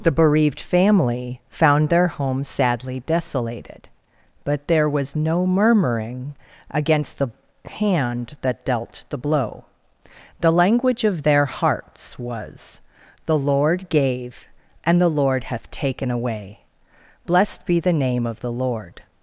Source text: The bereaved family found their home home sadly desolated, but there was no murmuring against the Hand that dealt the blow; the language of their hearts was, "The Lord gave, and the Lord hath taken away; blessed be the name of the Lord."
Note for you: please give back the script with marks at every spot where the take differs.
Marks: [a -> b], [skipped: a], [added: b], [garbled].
The bereaved family found their home [skipped: home] sadly desolated, but there was no murmuring against the Hand that dealt the blow; the language of their hearts was, "The Lord gave, and the Lord hath taken away; blessed be the name of the Lord."